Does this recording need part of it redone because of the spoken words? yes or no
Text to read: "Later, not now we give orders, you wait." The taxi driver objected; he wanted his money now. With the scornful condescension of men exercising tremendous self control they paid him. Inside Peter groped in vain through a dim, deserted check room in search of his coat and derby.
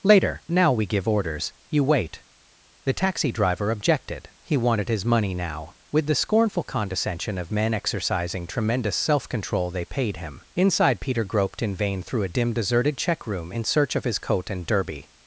yes